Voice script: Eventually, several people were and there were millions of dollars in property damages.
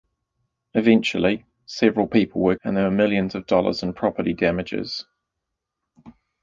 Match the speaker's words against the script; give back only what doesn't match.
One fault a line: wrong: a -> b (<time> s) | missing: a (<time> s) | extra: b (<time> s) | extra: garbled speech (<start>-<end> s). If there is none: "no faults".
no faults